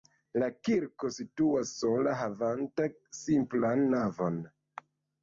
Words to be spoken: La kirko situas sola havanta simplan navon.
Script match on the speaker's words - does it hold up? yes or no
yes